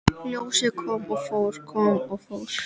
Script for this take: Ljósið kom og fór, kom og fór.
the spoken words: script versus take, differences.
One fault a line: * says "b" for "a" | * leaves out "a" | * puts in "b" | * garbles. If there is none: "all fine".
all fine